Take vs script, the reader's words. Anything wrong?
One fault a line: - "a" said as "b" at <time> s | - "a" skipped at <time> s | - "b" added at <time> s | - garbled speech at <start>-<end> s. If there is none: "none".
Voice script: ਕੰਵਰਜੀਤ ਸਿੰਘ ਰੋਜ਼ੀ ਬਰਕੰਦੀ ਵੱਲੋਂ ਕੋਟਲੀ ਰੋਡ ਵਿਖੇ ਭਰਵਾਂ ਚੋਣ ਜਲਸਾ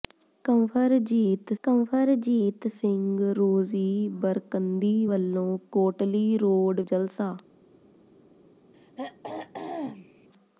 - "ਕੰਵਰਜੀਤ" added at 1.6 s
- "ਵਿਖੇ ਭਰਵਾਂ ਚੋਣ" skipped at 6.8 s